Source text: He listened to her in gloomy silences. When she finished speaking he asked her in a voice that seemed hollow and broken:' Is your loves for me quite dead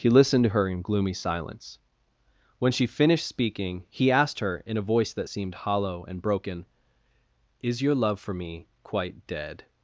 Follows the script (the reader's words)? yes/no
no